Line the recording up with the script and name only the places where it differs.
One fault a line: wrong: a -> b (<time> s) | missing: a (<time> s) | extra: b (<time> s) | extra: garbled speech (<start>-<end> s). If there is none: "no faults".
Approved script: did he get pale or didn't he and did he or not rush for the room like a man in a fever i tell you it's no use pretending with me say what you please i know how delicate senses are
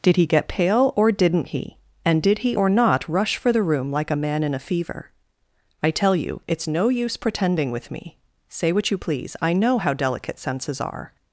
no faults